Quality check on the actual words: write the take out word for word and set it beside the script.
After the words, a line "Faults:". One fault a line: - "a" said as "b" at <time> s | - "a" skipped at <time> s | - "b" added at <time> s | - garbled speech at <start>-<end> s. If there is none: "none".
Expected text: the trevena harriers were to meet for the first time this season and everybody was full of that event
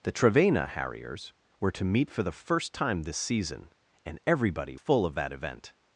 the trevena harriers were to meet for the first time this season and everybody full of that event
Faults:
- "was" skipped at 4.8 s